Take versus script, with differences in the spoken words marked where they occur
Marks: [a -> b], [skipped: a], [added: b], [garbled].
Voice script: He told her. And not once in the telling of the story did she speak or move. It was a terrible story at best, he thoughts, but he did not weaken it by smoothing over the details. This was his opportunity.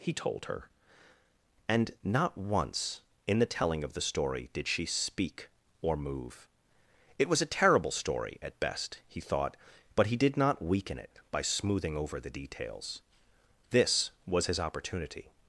He told her. And not once in the telling of the story did she speak or move. It was a terrible story at best, he [thoughts, -> thought] but he did not weaken it by smoothing over the details. This was his opportunity.